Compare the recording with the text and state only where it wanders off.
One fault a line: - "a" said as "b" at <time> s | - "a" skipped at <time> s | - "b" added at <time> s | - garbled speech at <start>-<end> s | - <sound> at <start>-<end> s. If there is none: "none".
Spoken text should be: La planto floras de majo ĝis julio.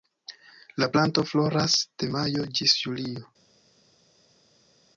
none